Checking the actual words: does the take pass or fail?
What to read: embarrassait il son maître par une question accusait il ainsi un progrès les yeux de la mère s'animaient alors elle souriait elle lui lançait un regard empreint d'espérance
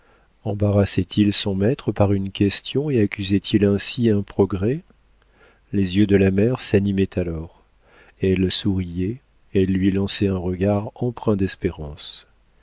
fail